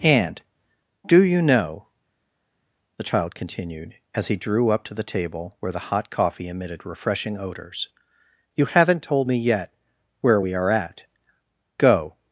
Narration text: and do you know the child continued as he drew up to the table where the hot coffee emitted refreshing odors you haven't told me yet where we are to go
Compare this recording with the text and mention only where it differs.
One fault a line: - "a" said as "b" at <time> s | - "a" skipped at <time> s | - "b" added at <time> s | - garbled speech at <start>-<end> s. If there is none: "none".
- "to" said as "at" at 10.7 s